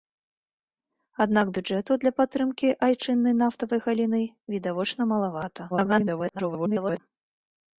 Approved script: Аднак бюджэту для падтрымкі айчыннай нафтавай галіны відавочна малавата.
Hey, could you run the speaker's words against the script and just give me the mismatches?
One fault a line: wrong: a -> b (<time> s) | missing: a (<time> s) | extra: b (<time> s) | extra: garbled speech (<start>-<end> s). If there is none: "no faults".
extra: garbled speech (5.7-7.0 s)